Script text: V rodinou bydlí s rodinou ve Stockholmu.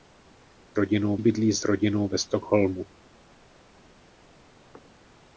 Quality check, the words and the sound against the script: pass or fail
pass